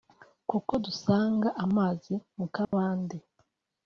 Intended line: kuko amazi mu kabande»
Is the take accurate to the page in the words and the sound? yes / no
no